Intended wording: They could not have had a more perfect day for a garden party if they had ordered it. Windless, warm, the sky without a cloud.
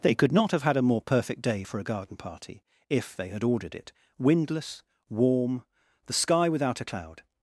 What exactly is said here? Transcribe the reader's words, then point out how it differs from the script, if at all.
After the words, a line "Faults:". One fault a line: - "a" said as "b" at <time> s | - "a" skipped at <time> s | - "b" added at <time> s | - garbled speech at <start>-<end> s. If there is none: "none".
They could not have had a more perfect day for a garden party if they had ordered it. Windless, warm, the sky without a cloud.
Faults:
none